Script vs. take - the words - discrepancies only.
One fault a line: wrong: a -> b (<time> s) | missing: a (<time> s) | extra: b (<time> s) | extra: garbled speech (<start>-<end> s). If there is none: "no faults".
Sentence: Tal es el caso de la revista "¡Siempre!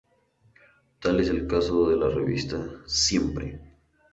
no faults